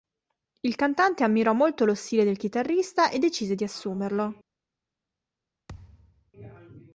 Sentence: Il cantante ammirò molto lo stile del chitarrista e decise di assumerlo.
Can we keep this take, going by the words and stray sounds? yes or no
no